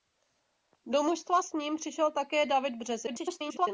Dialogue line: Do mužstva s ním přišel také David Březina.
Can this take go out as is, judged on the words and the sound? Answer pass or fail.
fail